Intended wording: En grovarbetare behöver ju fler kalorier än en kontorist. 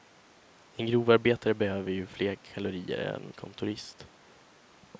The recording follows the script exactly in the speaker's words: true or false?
false